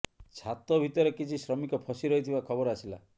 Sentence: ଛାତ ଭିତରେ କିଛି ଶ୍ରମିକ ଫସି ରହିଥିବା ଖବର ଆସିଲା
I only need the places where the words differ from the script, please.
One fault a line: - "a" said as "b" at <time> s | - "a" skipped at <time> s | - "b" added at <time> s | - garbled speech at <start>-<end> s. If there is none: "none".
none